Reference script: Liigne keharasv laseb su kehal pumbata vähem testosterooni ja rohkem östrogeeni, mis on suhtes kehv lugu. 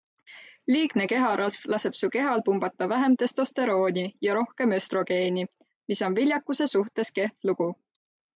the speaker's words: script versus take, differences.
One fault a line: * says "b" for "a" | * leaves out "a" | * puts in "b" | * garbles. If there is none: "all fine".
* puts in "viljakuse"